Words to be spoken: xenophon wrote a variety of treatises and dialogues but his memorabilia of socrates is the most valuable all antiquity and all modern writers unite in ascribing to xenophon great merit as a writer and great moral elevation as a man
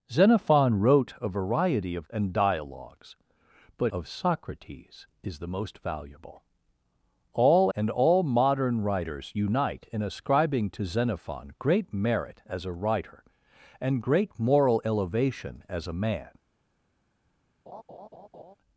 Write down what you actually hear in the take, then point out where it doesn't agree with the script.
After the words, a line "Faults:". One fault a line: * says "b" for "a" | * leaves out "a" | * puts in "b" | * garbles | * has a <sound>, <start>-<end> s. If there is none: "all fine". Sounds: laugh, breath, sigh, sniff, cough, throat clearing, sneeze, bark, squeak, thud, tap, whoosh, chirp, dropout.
xenophon wrote a variety of and dialogues but of socrates is the most valuable all and all modern writers unite in ascribing to xenophon great merit as a writer and great moral elevation as a man
Faults:
* leaves out "treatises"
* leaves out "his memorabilia"
* leaves out "antiquity"
* has a laugh, 17.7-18.6 s